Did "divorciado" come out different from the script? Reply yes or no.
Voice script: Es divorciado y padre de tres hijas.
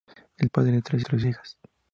yes